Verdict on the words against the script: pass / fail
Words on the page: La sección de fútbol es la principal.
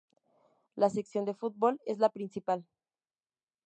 pass